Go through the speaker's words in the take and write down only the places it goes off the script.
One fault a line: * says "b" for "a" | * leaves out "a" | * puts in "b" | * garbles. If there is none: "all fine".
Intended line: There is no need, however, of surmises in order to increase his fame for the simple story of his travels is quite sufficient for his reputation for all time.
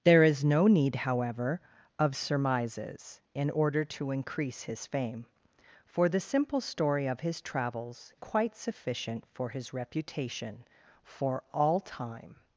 * leaves out "is"